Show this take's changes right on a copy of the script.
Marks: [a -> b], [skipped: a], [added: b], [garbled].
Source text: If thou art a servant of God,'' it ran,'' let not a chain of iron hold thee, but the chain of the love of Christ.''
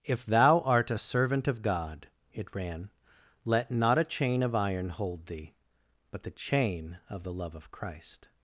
If thou art a servant of God,'' it ran,'' let not a chain of iron hold thee, but the chain of the love of Christ.''